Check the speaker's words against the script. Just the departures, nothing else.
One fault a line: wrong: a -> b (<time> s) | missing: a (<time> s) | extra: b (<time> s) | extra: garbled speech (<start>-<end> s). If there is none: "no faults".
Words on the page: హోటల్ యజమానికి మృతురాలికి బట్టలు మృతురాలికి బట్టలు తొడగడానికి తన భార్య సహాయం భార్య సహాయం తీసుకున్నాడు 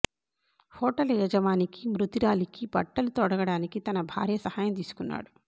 missing: మృతురాలికి బట్టలు (3.1 s)
missing: భార్య సహాయం (4.7 s)